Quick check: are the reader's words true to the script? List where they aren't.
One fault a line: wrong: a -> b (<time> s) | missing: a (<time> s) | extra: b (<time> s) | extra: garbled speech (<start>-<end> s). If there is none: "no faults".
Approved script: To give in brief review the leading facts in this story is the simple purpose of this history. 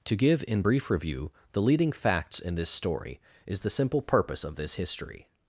no faults